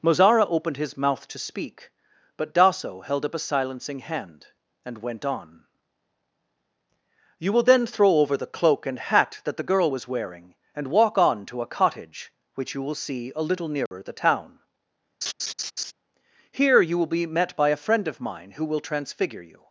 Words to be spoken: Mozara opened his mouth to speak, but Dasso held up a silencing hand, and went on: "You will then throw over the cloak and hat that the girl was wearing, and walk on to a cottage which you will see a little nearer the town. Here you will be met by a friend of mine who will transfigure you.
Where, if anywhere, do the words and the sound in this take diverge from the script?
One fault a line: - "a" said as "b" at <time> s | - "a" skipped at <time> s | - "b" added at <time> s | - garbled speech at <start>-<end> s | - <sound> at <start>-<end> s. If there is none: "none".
- dropout at 13.9-13.9 s
- laugh at 15.2-15.9 s